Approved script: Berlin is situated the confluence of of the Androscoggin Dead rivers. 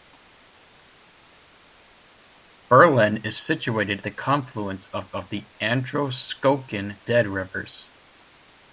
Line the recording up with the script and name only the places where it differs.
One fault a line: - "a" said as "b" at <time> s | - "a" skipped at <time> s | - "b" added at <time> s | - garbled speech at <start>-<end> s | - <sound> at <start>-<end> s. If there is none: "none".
none